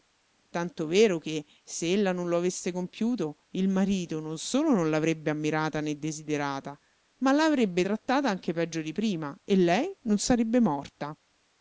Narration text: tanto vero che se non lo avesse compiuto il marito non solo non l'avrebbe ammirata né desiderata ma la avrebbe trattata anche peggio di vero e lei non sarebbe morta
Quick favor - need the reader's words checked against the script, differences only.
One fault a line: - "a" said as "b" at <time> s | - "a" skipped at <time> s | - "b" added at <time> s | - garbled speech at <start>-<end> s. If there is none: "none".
- "ella" added at 1.9 s
- "vero" said as "prima" at 8.9 s